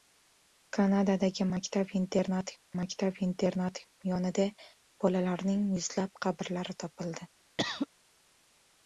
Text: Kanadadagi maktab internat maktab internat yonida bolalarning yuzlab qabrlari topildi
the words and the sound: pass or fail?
fail